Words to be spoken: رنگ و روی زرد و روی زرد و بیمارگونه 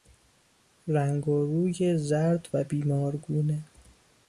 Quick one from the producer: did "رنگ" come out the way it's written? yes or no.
yes